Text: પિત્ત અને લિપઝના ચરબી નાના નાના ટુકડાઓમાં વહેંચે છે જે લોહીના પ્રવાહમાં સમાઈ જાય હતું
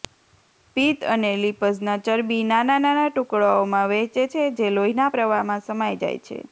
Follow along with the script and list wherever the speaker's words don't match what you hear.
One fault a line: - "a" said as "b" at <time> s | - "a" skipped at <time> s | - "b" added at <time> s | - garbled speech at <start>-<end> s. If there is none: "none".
- "હતું" said as "છે" at 6.2 s